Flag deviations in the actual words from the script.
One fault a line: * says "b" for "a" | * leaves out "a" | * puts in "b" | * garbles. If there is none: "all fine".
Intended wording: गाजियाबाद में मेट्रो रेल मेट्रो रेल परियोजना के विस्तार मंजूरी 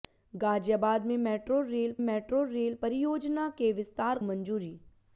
all fine